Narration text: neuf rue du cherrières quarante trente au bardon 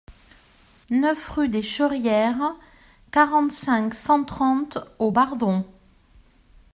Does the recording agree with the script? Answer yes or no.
no